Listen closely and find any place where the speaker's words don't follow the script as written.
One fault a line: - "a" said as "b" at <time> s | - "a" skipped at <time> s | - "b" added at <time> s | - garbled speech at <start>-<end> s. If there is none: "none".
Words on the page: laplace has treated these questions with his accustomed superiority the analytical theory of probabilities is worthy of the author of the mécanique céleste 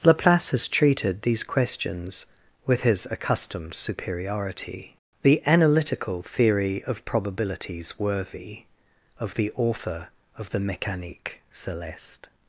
- "is" skipped at 8.0 s